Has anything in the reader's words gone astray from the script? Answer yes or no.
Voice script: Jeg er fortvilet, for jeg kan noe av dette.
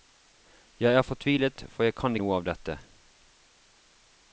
no